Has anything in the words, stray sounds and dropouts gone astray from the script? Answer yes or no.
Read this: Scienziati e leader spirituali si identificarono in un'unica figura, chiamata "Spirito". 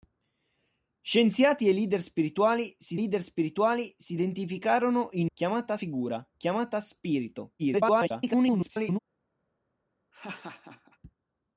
yes